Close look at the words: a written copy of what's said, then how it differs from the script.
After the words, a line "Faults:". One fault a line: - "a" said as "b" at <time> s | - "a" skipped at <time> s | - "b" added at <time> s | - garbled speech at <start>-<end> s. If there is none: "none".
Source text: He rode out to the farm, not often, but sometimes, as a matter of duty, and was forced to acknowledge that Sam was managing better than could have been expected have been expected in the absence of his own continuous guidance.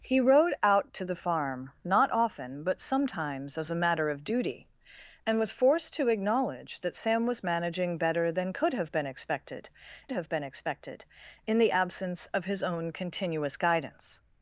He rode out to the farm, not often, but sometimes, as a matter of duty, and was forced to acknowledge that Sam was managing better than could have been expected have been expected in the absence of his own continuous guidance.
Faults:
none